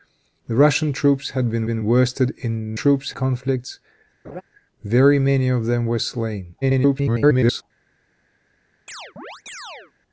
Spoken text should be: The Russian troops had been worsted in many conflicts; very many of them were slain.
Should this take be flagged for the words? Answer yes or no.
yes